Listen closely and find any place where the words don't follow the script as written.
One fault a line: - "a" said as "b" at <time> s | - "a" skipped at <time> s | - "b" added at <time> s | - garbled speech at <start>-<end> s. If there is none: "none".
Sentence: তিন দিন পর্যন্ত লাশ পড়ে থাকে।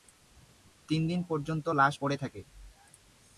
none